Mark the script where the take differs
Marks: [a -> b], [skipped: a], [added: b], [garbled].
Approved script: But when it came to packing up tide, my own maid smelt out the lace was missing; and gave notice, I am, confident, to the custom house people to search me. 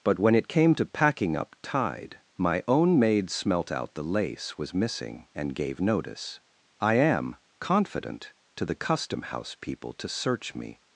But when it came to packing up tide, my own maid smelt out the lace was missing; and gave notice, I am, confident, to the custom house people to search me.